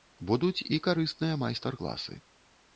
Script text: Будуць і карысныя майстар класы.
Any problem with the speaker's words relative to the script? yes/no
no